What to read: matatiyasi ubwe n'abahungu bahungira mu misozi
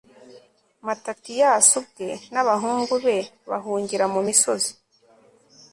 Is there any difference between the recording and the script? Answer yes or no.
yes